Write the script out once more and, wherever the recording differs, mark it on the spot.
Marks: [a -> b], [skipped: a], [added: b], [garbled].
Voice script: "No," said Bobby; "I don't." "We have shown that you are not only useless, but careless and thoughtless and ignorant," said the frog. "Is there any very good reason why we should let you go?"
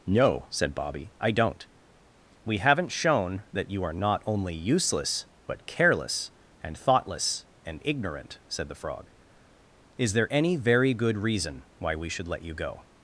"No," said Bobby; "I don't." "We [have -> haven't] shown that you are not only useless, but careless and thoughtless and ignorant," said the frog. "Is there any very good reason why we should let you go?"